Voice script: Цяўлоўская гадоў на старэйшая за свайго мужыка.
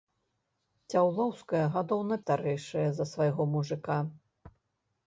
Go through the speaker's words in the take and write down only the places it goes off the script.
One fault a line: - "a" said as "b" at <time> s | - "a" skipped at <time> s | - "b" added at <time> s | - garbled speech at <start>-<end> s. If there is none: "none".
none